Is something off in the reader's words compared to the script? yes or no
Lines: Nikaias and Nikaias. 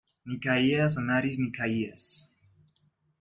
yes